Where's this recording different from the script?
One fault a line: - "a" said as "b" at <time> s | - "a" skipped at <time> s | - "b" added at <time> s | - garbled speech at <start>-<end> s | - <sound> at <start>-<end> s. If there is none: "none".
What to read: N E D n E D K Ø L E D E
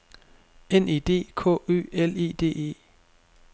- "n E D" skipped at 1.1 s